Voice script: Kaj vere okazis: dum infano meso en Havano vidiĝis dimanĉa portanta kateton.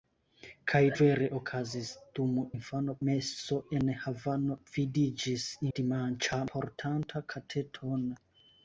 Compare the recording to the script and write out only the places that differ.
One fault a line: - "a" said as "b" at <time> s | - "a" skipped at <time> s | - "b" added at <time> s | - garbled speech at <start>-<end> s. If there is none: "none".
none